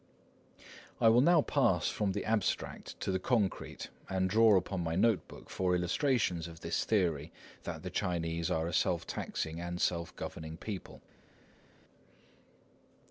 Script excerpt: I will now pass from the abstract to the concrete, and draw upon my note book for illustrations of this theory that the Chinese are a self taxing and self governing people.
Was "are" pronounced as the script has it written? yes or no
yes